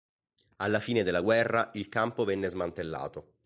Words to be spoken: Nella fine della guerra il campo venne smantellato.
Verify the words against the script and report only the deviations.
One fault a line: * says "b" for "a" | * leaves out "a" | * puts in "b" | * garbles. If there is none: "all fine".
* says "Alla" for "Nella"